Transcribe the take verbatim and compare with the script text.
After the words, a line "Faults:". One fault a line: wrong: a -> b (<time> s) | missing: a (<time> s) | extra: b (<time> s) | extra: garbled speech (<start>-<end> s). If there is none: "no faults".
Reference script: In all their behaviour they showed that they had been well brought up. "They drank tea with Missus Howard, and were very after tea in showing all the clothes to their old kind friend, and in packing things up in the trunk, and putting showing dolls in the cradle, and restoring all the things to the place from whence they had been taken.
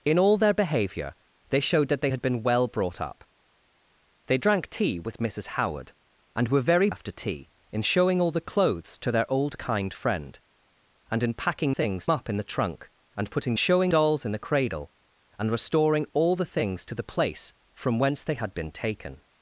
In all their behaviour they showed that they had been well brought up. "They drank tea with Missus Howard, and were very after tea in showing all the clothes to their old kind friend, and in packing things up in the trunk, and putting showing dolls in the cradle, and restoring all the things to the place from whence they had been taken.
Faults:
no faults